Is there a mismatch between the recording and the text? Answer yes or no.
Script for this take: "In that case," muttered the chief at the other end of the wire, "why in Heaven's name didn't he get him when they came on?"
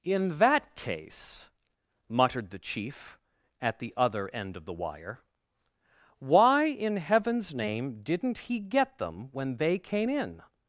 yes